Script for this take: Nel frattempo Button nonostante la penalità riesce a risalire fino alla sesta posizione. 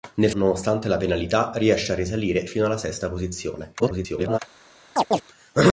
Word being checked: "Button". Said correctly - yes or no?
no